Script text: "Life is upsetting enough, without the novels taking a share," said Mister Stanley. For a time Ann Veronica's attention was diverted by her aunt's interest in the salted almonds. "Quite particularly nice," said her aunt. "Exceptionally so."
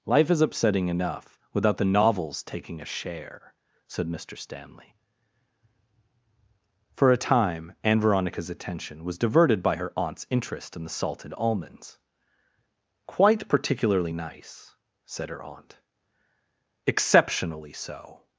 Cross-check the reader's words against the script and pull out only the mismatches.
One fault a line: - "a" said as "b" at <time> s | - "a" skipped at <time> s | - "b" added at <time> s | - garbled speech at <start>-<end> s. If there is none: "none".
none